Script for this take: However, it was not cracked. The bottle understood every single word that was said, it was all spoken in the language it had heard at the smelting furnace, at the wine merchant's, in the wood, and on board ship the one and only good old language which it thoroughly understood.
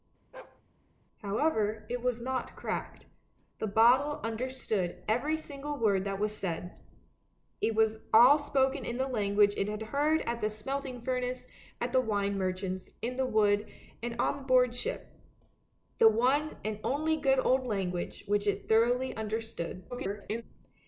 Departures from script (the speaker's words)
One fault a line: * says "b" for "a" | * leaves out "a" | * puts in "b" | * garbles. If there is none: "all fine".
* garbles